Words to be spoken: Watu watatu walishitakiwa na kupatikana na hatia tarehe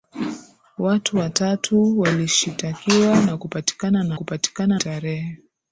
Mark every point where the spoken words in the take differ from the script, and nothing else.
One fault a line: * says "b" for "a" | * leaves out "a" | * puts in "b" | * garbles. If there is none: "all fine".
* says "kupatikana" for "hatia"